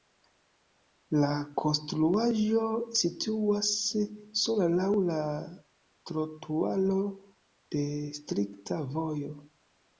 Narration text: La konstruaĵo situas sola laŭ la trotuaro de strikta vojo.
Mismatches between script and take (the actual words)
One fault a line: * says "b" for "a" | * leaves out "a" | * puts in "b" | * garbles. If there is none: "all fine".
all fine